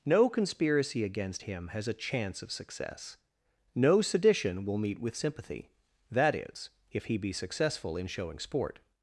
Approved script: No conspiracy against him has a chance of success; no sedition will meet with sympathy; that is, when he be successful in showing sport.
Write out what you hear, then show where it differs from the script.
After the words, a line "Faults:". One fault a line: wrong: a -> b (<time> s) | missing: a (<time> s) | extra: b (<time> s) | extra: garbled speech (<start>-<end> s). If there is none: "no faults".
No conspiracy against him has a chance of success; no sedition will meet with sympathy; that is, if he be successful in showing sport.
Faults:
wrong: when -> if (6.9 s)